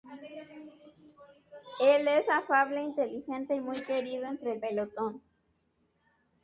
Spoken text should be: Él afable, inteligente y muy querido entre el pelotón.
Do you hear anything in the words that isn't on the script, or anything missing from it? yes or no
yes